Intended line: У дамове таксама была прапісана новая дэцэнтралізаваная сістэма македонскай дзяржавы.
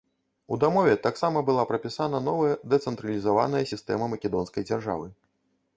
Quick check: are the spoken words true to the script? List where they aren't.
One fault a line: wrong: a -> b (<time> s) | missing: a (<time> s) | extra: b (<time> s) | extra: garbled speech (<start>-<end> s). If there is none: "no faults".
no faults